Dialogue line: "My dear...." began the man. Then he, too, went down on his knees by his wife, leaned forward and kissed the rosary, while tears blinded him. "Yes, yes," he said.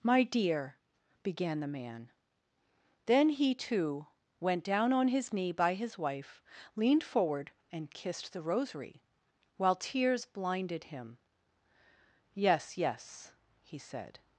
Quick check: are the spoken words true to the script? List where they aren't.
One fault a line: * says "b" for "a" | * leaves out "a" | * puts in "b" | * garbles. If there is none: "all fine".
* says "knee" for "knees"